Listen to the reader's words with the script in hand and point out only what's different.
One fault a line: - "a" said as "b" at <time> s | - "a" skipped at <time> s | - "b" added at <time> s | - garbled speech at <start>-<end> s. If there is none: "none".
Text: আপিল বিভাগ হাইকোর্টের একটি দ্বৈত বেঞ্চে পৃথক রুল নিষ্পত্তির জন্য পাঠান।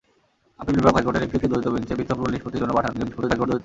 - "একটি" added at 1.3 s
- garbled speech at 2.9-3.6 s